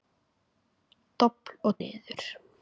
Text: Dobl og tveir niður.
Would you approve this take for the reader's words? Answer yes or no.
no